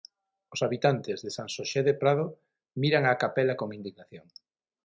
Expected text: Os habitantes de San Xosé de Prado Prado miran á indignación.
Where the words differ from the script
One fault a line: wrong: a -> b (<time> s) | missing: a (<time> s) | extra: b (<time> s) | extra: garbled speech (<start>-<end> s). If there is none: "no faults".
missing: Prado (2.2 s)
extra: capela con (3.2 s)